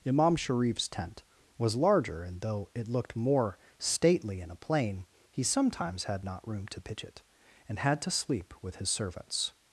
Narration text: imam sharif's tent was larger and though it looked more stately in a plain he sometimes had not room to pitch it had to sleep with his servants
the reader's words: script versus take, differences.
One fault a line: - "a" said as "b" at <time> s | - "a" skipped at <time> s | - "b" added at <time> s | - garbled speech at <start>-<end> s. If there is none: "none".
- "and" added at 7.7 s